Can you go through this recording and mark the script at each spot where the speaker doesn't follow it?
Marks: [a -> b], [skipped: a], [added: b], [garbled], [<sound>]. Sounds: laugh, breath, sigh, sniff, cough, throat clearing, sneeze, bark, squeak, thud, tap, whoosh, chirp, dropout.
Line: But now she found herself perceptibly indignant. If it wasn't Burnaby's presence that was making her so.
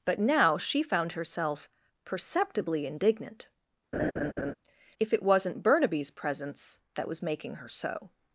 But now she found herself perceptibly indignant. [laugh] If it wasn't Burnaby's presence that was making her so.